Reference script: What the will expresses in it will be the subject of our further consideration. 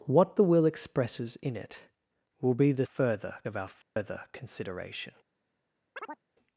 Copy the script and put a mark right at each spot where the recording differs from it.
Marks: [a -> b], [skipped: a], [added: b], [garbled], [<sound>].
What the will expresses in it will be the [subject -> further] of our further [dropout] consideration. [chirp]